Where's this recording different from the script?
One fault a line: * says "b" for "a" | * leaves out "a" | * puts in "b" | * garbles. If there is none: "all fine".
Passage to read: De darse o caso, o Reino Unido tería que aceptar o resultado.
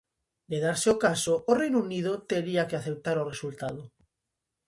all fine